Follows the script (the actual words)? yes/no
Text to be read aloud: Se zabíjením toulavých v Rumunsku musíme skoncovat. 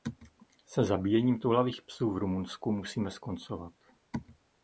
no